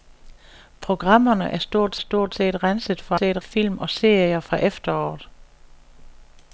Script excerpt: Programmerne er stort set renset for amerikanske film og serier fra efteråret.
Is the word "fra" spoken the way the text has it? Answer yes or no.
yes